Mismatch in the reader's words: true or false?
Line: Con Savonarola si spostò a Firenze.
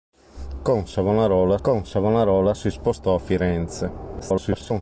true